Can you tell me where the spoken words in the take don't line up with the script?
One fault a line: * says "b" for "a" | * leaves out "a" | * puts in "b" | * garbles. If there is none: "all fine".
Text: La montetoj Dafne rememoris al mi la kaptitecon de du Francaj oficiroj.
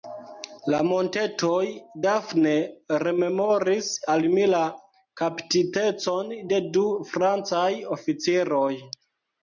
all fine